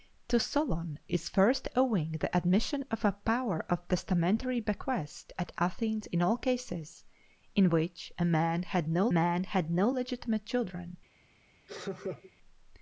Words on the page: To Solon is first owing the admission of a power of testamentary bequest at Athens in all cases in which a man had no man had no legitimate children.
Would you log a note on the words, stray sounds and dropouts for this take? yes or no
yes